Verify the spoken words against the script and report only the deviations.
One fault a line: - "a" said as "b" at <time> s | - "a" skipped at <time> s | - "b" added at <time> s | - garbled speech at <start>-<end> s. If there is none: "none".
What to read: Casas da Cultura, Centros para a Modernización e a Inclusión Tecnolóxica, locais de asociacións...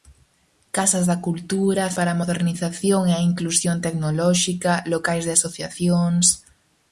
- "Centros" skipped at 1.9 s